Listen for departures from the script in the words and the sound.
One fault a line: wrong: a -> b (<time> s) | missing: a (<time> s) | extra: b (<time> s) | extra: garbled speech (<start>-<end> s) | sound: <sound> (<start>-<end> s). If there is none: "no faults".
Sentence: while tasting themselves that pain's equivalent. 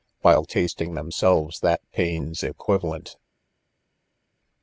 no faults